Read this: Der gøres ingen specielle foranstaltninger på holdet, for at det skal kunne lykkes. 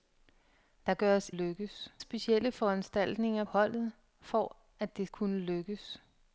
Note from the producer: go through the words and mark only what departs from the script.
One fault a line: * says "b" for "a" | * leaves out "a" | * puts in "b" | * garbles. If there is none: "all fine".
* says "lykkes" for "ingen"
* leaves out "på"
* leaves out "skal"